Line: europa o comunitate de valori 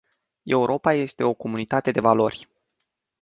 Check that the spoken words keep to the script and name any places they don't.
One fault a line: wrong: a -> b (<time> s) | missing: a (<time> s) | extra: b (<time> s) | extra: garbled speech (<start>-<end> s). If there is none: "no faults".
extra: este (0.9 s)